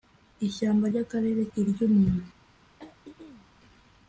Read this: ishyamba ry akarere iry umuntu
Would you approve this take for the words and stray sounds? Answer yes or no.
no